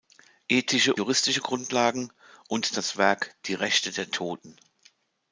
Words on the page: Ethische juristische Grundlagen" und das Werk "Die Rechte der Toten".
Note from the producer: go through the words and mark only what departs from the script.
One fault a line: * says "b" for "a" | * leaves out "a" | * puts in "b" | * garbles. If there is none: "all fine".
all fine